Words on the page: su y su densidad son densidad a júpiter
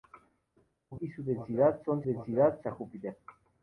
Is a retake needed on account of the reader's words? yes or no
no